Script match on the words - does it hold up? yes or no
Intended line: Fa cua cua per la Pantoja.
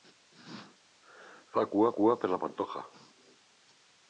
yes